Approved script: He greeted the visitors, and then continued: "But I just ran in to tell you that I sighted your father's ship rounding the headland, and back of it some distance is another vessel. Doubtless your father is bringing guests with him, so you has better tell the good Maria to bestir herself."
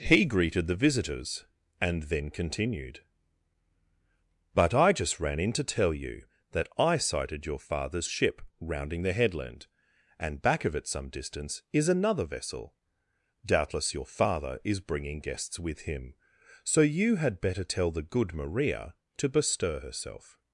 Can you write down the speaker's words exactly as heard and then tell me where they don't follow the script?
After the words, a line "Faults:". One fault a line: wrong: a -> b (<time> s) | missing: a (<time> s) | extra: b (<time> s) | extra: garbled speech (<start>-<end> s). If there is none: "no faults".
He greeted the visitors, and then continued: "But I just ran in to tell you that I sighted your father's ship rounding the headland, and back of it some distance is another vessel. Doubtless your father is bringing guests with him, so you had better tell the good Maria to bestir herself."
Faults:
wrong: has -> had (17.2 s)